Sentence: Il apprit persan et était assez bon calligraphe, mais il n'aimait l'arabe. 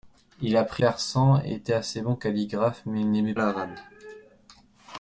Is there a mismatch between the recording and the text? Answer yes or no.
no